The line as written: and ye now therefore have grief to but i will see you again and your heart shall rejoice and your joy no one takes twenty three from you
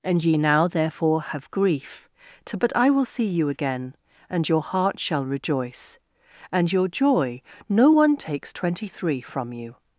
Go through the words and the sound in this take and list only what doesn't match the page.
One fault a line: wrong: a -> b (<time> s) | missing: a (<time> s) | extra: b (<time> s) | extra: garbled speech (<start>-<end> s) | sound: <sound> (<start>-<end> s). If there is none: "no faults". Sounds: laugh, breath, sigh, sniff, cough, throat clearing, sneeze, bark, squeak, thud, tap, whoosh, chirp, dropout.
no faults